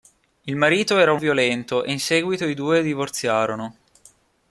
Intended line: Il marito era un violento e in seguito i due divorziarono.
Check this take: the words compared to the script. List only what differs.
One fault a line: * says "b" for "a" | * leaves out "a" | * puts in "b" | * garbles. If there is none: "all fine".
all fine